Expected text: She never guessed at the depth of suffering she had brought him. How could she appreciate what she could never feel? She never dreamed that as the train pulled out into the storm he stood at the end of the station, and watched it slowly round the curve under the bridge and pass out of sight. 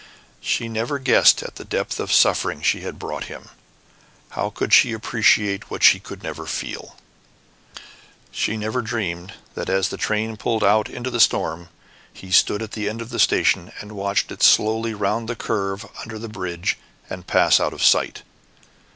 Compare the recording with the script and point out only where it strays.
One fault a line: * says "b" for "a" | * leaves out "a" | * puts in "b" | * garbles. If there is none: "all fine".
all fine